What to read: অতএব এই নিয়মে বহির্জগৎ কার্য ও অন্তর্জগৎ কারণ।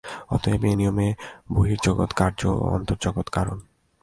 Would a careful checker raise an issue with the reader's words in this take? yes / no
no